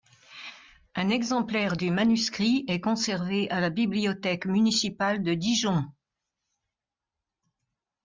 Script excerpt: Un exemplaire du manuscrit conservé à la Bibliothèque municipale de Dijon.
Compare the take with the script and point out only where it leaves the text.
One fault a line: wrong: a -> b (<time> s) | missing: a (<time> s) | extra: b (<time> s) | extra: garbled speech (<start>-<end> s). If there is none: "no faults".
extra: est (2.7 s)